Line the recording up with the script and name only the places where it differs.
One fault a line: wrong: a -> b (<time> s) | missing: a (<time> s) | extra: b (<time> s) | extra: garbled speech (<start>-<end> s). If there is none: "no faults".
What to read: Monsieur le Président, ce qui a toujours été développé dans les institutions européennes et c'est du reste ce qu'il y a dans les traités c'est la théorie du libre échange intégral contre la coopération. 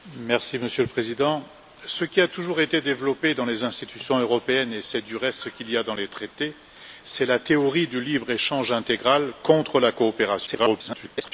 extra: garbled speech (10.5-11.3 s)